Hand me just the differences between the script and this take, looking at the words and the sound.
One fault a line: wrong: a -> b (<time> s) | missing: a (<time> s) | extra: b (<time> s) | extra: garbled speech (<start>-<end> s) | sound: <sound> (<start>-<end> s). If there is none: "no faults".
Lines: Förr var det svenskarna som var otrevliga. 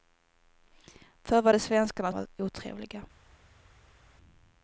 missing: som (2.1 s)